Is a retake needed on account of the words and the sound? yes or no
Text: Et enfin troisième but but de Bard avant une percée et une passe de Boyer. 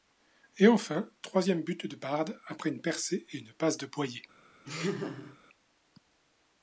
yes